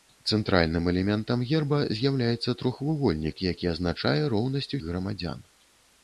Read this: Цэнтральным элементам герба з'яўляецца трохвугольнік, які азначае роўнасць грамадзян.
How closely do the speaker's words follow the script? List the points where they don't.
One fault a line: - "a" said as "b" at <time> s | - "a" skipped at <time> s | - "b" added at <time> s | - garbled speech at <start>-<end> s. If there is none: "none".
none